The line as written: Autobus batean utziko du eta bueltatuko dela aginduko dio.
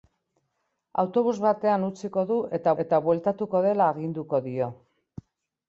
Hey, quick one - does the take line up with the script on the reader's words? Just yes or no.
no